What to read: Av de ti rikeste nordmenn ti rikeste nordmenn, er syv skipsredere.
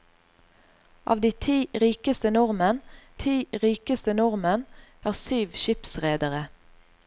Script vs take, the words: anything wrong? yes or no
no